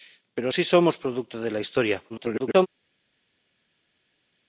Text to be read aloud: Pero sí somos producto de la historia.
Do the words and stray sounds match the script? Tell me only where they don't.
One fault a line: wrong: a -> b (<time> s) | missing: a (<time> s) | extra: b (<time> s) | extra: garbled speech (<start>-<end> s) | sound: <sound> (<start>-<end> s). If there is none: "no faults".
extra: garbled speech (2.1-2.7 s)